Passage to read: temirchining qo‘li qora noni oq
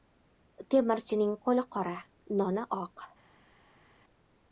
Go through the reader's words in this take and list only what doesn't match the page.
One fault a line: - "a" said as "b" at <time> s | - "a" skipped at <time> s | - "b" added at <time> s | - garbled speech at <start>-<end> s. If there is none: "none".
none